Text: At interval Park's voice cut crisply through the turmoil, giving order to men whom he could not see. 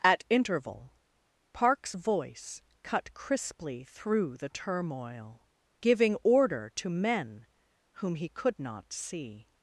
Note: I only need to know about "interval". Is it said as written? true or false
true